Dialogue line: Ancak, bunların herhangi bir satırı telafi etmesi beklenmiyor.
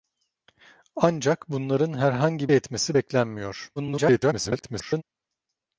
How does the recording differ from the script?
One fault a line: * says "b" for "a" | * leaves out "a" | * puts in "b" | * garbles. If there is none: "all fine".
* leaves out "bir satırı telafi"
* garbles